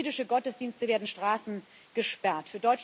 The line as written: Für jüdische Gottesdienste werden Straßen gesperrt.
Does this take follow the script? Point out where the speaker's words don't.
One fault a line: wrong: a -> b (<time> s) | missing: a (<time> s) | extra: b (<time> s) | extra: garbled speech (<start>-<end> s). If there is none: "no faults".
no faults